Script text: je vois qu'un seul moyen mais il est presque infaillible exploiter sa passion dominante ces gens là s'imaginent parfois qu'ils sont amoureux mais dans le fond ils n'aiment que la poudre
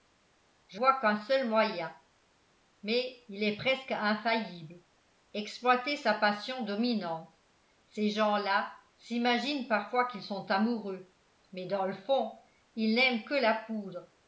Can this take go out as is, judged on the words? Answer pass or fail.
pass